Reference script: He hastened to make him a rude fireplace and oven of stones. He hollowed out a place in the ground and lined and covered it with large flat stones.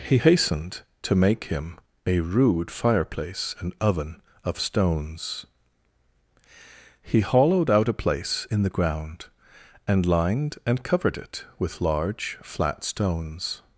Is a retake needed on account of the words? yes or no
no